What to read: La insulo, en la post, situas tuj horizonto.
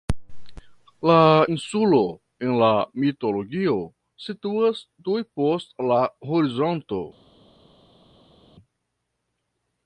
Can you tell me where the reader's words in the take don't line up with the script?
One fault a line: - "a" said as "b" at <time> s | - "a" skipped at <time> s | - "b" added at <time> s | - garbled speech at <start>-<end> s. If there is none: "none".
- "post" said as "mitologio" at 3.0 s
- "post la" added at 5.4 s